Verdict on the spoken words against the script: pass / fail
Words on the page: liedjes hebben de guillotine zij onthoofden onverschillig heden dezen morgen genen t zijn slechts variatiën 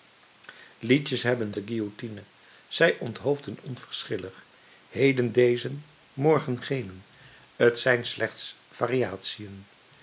pass